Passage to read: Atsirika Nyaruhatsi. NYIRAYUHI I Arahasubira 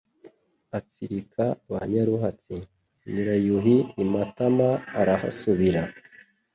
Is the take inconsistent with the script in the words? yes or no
yes